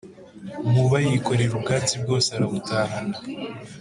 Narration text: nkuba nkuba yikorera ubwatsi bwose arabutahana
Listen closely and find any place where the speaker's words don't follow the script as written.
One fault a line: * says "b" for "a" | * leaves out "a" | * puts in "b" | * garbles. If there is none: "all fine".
* leaves out "nkuba"